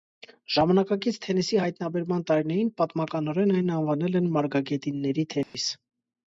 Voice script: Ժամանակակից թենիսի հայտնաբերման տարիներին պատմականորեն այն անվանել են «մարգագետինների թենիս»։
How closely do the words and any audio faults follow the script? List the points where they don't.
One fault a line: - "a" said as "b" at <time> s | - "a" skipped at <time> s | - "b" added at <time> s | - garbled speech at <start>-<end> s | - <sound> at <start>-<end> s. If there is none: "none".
- dropout at 5.4-5.5 s